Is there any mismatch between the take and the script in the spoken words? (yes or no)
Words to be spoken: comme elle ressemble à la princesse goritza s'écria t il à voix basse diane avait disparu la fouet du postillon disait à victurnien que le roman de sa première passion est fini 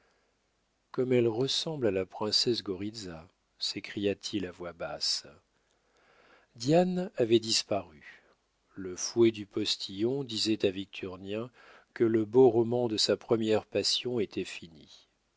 yes